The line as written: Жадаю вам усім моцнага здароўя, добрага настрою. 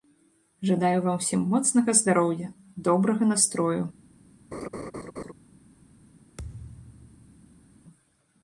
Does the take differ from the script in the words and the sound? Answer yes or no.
yes